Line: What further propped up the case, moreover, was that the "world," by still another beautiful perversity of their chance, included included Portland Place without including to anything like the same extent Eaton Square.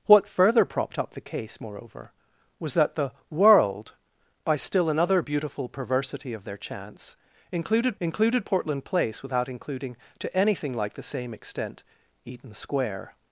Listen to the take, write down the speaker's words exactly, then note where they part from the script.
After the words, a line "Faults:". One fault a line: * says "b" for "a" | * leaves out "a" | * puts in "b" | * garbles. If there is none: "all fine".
What further propped up the case, moreover, was that the "world," by still another beautiful perversity of their chance, included included Portland Place without including to anything like the same extent Eaton Square.
Faults:
all fine